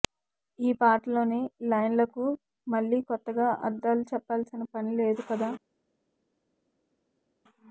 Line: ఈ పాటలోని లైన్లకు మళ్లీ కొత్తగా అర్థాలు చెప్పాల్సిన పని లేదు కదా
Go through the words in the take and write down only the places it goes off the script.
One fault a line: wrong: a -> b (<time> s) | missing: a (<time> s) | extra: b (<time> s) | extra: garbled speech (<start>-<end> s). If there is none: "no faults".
no faults